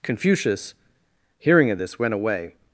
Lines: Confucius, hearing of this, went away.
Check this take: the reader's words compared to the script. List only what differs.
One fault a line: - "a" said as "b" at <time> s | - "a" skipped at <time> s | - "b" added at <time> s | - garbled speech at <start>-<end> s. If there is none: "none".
none